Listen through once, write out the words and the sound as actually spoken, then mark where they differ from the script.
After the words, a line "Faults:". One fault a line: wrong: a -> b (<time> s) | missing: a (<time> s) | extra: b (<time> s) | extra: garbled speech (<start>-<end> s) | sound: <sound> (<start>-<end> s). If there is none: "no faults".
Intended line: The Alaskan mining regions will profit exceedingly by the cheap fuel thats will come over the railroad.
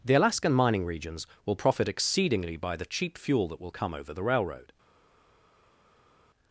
The Alaskan mining regions will profit exceedingly by the cheap fuel that will come over the railroad.
Faults:
wrong: thats -> that (3.5 s)